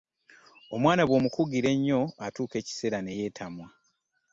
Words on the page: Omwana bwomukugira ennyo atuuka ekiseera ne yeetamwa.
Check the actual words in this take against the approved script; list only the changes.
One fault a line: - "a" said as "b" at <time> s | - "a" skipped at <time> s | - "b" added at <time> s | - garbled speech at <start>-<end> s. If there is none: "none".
none